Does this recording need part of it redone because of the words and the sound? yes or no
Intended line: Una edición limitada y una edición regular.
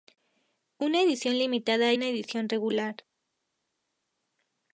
yes